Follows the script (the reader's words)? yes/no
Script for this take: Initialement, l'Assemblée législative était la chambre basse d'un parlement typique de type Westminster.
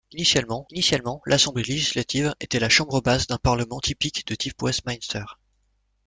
no